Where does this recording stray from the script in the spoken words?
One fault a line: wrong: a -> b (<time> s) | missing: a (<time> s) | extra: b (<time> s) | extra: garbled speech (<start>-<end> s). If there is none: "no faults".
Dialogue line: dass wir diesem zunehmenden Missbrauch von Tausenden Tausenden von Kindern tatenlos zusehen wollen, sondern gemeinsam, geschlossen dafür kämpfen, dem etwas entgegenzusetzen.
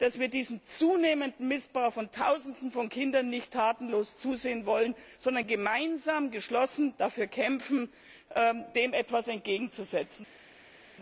missing: Tausenden (2.7 s)
extra: nicht (3.3 s)